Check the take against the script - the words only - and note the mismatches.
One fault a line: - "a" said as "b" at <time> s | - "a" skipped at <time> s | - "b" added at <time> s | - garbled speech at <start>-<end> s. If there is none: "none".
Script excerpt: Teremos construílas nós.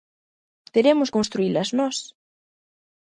none